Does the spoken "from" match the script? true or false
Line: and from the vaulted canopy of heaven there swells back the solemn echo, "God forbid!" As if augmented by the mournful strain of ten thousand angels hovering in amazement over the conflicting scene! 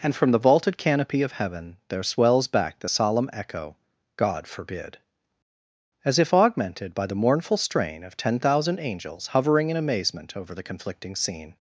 true